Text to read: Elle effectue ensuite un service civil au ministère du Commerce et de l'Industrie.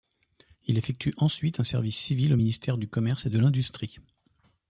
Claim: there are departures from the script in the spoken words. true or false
true